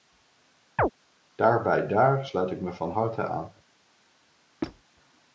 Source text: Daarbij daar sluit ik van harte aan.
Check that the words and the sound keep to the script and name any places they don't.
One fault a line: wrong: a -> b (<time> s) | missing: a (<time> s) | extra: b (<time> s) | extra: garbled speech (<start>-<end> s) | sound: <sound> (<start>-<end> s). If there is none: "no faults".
sound: chirp (0.8-0.9 s)
extra: me (2.6 s)
sound: squeak (4.6-4.8 s)